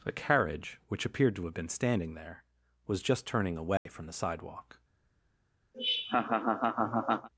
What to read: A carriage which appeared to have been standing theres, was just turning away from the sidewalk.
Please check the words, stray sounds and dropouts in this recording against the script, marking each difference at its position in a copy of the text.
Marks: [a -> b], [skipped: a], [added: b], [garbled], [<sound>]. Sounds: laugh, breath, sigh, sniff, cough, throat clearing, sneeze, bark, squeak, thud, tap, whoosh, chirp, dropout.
A carriage which appeared to have been standing [theres, -> there] was just turning away [dropout] from the sidewalk. [laugh]